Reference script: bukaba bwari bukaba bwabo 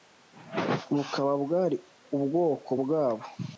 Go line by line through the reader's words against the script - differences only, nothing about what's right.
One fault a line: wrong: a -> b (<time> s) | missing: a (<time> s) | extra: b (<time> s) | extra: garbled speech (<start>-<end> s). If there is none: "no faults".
wrong: bukaba -> ubwoko (2.1 s)